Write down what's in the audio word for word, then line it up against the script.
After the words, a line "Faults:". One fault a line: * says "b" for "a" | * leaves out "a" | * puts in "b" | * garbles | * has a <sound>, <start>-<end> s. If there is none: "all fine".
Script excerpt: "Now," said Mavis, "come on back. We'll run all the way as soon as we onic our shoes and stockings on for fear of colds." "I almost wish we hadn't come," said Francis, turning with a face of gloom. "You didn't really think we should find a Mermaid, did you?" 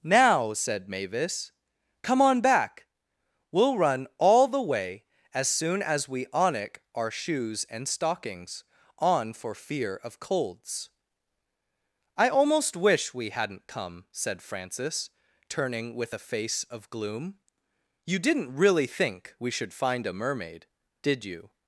"Now," said Mavis, "come on back. We'll run all the way as soon as we onic our shoes and stockings on for fear of colds." "I almost wish we hadn't come," said Francis, turning with a face of gloom. "You didn't really think we should find a Mermaid, did you?"
Faults:
all fine